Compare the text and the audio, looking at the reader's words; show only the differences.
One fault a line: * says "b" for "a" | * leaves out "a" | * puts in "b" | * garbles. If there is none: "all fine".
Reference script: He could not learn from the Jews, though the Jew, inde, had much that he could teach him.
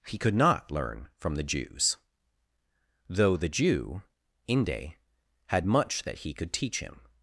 all fine